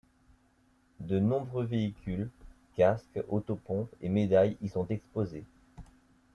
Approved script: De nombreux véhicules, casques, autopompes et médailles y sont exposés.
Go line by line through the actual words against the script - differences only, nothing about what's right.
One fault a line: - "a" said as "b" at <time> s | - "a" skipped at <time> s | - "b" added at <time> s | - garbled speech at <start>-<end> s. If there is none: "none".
none